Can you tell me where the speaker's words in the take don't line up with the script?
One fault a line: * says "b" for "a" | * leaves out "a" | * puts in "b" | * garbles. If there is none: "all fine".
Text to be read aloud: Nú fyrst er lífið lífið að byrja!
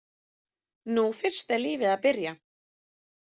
* leaves out "lífið"